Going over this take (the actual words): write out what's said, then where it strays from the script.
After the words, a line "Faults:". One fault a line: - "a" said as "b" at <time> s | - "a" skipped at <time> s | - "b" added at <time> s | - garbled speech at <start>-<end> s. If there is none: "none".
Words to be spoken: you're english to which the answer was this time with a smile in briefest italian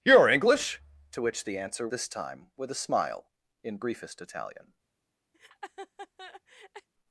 you're english to which the answer this time with a smile in briefest italian
Faults:
- "was" skipped at 1.9 s